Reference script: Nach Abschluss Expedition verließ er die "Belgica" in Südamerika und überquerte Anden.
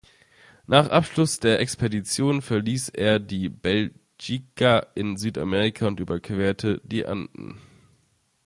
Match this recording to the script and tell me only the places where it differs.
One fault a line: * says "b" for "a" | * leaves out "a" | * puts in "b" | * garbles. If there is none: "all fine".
* puts in "der"
* puts in "die"